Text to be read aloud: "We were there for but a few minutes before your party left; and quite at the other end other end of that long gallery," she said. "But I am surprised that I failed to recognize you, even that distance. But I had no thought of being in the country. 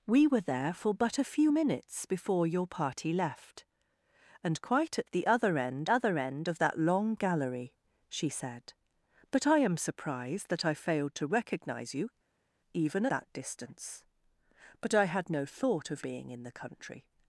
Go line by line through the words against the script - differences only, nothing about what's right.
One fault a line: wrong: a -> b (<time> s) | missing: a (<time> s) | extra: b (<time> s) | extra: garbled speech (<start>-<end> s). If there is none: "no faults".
no faults